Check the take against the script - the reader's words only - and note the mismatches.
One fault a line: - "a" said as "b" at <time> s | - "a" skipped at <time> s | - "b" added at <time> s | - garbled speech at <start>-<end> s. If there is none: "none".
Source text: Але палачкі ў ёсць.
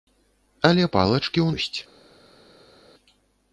none